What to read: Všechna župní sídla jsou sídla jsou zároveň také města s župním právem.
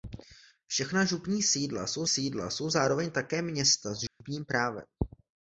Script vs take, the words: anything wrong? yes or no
no